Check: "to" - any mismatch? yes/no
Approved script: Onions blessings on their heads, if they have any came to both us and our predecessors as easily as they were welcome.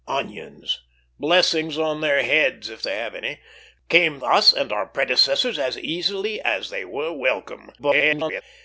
yes